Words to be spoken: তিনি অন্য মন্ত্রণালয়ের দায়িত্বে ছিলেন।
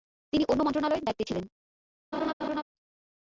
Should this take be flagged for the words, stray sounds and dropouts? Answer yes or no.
yes